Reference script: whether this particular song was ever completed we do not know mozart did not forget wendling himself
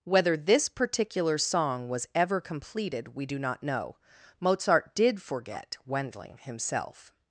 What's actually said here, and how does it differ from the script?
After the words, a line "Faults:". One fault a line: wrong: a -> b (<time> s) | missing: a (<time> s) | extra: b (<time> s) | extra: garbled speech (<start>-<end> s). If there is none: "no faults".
whether this particular song was ever completed we do not know mozart did forget wendling himself
Faults:
missing: not (5.2 s)